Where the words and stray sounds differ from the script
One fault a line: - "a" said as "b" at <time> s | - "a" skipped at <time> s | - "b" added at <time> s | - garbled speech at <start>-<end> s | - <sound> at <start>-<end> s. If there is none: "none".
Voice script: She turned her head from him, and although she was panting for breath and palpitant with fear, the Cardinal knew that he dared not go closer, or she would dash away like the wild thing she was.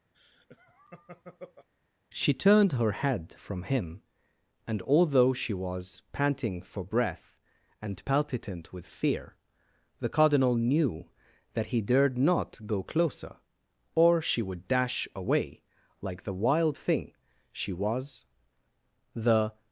- laugh at 0.1-1.7 s
- "The" added at 19.1 s